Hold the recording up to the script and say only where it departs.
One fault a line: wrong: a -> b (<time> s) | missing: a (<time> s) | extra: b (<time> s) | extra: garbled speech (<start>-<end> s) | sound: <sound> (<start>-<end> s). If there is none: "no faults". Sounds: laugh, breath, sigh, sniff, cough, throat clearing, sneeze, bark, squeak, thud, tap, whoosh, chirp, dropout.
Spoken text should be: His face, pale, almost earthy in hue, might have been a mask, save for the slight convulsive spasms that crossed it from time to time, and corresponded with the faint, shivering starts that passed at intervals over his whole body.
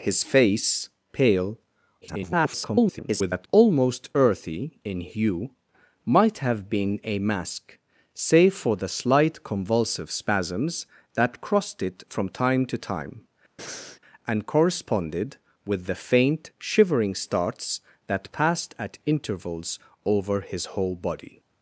extra: garbled speech (2.0-3.5 s)
sound: breath (13.6-14.0 s)